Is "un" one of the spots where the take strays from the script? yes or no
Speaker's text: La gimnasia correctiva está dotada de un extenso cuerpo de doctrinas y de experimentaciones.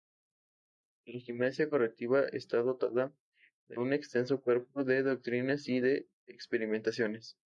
no